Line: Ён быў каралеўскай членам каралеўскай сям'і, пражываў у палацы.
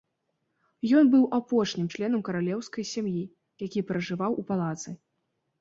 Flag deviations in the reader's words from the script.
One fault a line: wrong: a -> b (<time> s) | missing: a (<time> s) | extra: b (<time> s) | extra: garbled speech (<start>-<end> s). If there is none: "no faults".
wrong: каралеўскай -> апошнім (1.4 s)
extra: які (3.7 s)